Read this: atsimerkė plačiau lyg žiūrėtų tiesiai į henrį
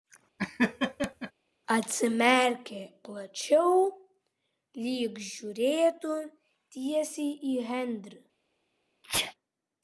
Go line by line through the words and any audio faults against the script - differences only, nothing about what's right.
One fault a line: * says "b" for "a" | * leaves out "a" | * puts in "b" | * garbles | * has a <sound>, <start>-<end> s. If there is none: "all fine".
* has a laugh, 0.4-1.3 s
* has a sneeze, 9.0-9.3 s